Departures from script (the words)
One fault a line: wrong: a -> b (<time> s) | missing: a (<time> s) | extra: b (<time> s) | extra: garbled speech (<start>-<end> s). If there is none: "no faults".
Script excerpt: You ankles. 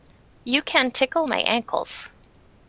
extra: can tickle my (0.6 s)